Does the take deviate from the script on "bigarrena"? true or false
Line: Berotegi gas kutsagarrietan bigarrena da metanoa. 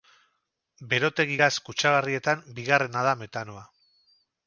false